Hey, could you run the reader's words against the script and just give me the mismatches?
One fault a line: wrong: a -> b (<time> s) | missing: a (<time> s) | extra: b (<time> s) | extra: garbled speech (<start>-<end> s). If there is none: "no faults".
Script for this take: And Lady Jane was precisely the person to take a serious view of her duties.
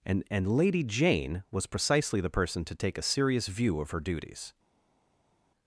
extra: and (0.3 s)